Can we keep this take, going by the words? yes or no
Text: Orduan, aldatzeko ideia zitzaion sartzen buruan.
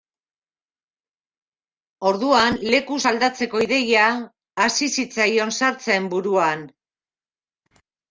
no